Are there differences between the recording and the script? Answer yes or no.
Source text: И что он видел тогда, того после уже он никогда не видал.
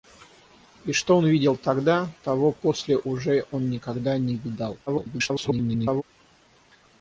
yes